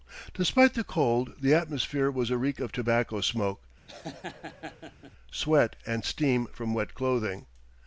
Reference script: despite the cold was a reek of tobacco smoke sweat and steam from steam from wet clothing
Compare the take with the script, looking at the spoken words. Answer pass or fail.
fail